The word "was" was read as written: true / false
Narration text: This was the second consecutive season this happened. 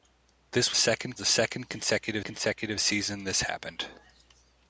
false